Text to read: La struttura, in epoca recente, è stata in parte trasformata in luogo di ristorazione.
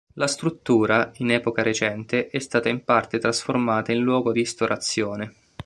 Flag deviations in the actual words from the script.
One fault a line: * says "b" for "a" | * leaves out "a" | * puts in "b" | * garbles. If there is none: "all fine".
* leaves out "di"